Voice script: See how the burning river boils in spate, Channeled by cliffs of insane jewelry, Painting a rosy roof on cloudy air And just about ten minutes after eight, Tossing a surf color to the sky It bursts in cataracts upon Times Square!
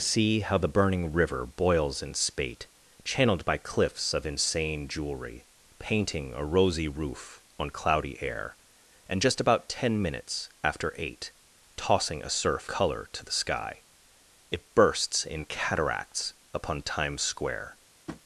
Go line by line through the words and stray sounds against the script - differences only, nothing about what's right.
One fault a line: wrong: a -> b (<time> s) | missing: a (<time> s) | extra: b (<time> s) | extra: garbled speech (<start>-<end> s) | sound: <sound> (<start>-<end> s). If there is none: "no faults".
sound: tap (18.1-18.2 s)